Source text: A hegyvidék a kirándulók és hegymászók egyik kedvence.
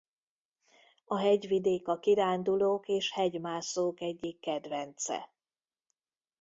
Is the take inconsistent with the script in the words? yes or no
no